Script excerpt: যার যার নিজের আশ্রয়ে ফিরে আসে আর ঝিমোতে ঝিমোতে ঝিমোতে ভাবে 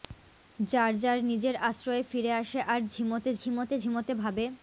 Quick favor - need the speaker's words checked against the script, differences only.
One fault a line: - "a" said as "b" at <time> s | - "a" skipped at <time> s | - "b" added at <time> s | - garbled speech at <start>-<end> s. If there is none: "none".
none